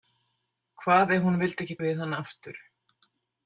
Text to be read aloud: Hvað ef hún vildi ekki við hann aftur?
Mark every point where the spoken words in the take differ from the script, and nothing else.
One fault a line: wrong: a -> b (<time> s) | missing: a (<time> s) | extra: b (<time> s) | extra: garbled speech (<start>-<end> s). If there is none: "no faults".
no faults